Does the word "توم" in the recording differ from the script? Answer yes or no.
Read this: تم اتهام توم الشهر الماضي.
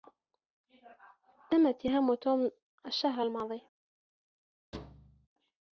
no